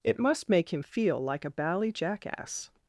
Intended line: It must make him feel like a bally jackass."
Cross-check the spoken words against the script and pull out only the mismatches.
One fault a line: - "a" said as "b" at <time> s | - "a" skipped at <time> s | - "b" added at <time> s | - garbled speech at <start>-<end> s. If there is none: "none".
none